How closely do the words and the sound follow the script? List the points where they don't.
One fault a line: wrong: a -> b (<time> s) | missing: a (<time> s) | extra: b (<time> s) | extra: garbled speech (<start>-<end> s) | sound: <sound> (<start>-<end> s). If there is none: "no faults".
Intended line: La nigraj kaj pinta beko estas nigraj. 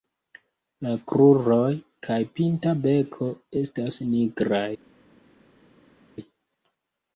wrong: nigraj -> kruroj (1.1 s)